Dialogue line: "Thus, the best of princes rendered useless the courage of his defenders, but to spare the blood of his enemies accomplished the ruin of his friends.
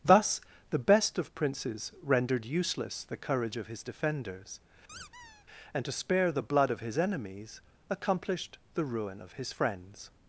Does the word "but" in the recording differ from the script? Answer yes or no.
yes